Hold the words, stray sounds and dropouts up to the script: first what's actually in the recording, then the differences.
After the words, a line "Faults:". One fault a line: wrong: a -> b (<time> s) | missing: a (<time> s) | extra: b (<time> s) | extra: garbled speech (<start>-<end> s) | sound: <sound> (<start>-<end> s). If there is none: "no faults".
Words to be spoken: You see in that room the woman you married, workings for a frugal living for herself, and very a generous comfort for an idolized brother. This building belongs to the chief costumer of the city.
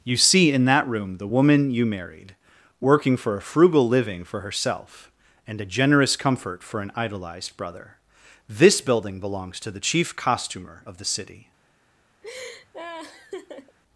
You see in that room the woman you married, working for a frugal living for herself, and a generous comfort for an idolized brother. This building belongs to the chief costumer of the city.
Faults:
wrong: workings -> working (2.8 s)
missing: very (5.6 s)
sound: laugh (12.2-13.8 s)